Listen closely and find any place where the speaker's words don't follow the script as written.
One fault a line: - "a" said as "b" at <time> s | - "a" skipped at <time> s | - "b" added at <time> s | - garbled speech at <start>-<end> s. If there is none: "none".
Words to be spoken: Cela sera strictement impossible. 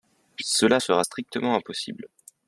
none